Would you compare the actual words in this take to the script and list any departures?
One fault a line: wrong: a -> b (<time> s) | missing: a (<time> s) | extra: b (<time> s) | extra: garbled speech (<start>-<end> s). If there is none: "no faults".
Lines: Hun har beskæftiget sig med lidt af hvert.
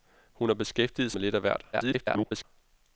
missing: sig (1.1 s)
extra: garbled speech (1.7-2.4 s)